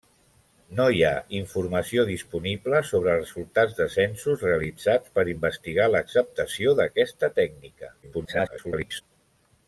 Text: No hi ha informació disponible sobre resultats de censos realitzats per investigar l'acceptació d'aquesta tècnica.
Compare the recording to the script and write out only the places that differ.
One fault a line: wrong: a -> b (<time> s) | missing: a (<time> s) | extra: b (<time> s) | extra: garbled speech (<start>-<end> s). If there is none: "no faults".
extra: garbled speech (8.0-9.0 s)